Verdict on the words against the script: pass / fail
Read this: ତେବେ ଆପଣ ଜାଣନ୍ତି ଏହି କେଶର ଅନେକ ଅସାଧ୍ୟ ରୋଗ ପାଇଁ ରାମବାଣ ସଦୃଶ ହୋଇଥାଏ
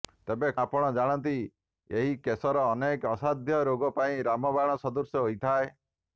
pass